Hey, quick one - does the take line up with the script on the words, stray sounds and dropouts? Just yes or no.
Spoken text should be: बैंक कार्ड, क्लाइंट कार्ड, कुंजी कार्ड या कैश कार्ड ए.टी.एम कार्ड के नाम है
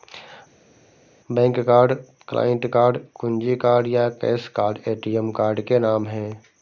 yes